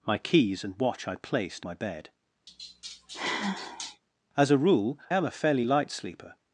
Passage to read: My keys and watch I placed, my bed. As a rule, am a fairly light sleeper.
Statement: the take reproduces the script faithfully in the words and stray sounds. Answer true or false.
false